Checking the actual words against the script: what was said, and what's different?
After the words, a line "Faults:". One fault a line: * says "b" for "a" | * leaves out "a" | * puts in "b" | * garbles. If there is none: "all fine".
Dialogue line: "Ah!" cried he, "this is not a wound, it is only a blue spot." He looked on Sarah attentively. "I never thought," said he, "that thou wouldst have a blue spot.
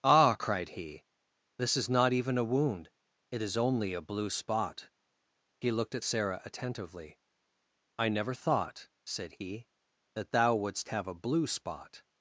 "Ah!" cried he, "this is not even a wound, it is only a blue spot." He looked at Sarah attentively. "I never thought," said he, "that thou wouldst have a blue spot.
Faults:
* puts in "even"
* says "at" for "on"